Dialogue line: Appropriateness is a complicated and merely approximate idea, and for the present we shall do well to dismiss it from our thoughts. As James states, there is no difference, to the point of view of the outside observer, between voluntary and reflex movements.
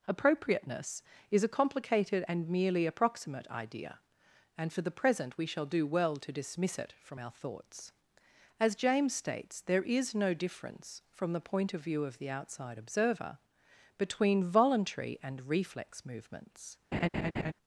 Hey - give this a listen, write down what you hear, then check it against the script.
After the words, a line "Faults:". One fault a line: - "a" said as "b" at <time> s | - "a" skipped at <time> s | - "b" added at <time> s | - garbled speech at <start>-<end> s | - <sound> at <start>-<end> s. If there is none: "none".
Appropriateness is a complicated and merely approximate idea, and for the present we shall do well to dismiss it from our thoughts. As James states, there is no difference, from the point of view of the outside observer, between voluntary and reflex movements.
Faults:
- "to" said as "from" at 11.1 s
- laugh at 16.9-17.5 s